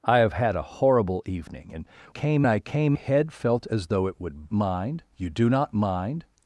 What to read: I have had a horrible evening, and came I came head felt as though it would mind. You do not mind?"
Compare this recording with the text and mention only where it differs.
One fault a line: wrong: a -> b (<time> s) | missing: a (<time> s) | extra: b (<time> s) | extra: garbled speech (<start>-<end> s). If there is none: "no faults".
no faults